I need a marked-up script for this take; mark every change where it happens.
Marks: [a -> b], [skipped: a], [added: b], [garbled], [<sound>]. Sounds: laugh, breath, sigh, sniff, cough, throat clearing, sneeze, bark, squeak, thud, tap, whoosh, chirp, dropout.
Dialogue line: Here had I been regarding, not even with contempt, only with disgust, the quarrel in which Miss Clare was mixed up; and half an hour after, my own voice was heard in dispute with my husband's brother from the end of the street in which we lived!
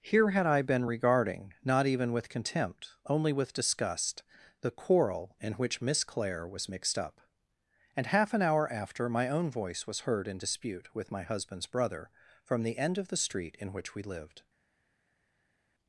Here had I been regarding, not even with contempt, only with disgust, the quarrel in which Miss Clare was mixed up; and half an hour after, my own voice was heard in dispute with my husband's brother from the end of the street in which we lived!